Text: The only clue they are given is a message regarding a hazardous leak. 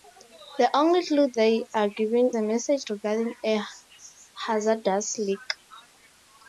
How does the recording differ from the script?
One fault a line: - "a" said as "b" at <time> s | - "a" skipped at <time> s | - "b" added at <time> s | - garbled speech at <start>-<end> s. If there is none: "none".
- "is" skipped at 2.3 s